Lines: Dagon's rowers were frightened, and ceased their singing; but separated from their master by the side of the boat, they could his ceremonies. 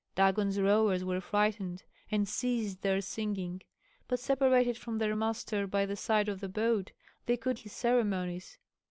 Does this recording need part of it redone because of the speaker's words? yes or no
no